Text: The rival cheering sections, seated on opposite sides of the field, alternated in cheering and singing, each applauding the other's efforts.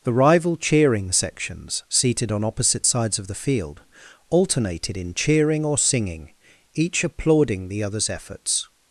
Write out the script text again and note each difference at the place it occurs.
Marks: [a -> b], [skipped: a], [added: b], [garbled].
The rival cheering sections, seated on opposite sides of the field, alternated in cheering [and -> or] singing, each applauding the other's efforts.